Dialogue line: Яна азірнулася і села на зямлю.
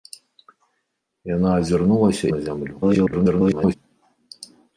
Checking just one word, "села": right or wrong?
wrong